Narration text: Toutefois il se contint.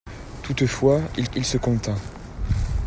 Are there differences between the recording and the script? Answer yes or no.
yes